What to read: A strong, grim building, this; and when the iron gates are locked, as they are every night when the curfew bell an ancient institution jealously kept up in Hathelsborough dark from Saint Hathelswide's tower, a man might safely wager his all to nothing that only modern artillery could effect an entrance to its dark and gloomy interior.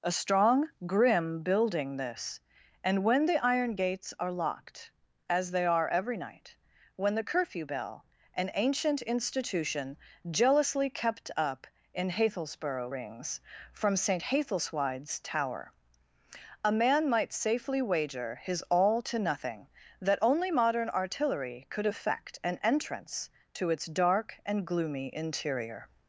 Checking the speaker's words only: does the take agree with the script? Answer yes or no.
no